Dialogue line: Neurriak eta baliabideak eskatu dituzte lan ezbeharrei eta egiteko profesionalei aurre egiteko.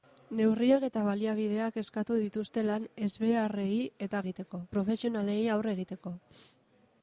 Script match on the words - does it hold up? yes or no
yes